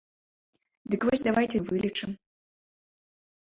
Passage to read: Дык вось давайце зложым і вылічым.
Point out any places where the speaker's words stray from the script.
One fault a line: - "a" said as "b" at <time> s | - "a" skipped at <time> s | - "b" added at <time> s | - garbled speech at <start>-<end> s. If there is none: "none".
- "зложым" skipped at 1.6 s